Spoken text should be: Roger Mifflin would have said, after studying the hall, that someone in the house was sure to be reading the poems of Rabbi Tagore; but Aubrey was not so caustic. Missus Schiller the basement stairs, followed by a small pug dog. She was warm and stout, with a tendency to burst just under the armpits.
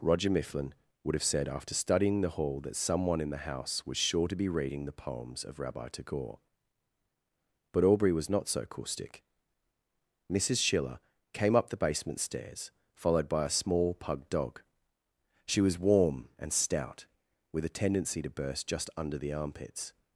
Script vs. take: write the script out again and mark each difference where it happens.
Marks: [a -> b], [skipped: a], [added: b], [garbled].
Roger Mifflin would have said, after studying the hall, that someone in the house was sure to be reading the poems of Rabbi Tagore; but Aubrey was not so caustic. Missus Schiller [added: came up] the basement stairs, followed by a small pug dog. She was warm and stout, with a tendency to burst just under the armpits.